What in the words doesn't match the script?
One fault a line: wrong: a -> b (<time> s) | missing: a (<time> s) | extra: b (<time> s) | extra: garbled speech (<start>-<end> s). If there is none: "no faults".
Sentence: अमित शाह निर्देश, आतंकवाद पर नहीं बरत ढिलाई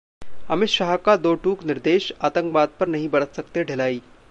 extra: का दो टूक (1.0 s)
extra: सकते (3.4 s)